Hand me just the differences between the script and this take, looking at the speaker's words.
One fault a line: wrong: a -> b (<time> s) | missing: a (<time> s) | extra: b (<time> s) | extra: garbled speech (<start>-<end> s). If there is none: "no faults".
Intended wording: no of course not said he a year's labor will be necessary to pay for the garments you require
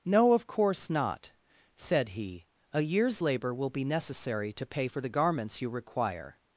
no faults